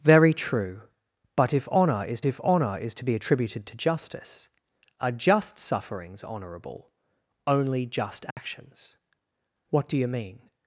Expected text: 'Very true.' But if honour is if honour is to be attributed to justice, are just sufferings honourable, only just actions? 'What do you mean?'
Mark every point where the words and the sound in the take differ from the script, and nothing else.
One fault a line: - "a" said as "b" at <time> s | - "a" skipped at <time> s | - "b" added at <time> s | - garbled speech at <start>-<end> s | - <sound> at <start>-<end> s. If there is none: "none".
- dropout at 8.3-8.4 s